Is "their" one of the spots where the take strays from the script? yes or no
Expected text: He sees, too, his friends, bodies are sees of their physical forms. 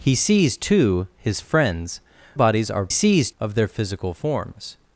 no